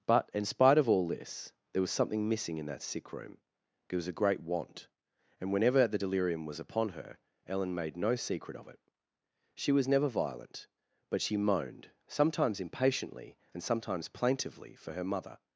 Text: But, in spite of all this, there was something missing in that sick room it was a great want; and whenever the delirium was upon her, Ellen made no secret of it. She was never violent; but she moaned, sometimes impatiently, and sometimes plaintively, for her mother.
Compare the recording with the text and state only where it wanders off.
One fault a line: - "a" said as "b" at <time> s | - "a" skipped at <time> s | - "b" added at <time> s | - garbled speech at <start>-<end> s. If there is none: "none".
none